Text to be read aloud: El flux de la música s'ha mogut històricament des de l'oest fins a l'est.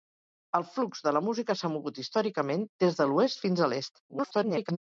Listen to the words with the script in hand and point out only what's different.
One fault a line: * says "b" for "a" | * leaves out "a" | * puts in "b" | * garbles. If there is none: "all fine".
* garbles